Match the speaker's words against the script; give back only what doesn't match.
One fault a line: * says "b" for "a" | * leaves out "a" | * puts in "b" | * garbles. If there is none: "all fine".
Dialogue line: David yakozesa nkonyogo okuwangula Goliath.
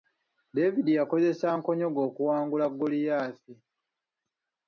all fine